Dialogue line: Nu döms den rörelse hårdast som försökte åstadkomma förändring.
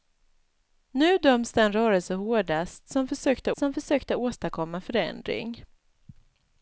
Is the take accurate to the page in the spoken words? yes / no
no